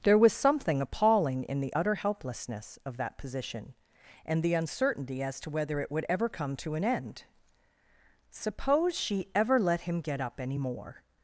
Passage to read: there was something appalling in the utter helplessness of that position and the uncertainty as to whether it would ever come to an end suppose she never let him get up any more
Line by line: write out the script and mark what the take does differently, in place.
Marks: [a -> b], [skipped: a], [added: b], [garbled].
there was something appalling in the utter helplessness of that position and the uncertainty as to whether it would ever come to an end suppose she [never -> ever] let him get up any more